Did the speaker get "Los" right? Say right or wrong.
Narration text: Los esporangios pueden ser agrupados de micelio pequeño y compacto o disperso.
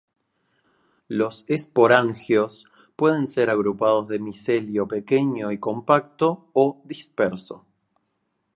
right